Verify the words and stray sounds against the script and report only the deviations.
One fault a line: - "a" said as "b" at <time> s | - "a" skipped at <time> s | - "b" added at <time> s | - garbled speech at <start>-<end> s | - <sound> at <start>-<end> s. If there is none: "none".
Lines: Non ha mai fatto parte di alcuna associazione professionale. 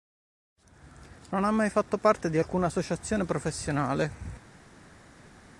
none